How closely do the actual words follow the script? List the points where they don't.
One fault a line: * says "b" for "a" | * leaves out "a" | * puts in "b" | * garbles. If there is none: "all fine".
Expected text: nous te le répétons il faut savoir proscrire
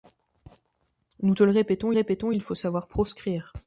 * puts in "répétons"